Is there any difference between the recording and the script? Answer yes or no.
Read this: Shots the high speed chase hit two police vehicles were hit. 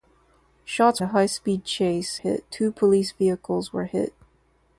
no